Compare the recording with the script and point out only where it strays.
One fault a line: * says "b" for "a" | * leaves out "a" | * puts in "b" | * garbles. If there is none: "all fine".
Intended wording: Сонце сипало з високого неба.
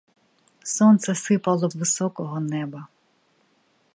all fine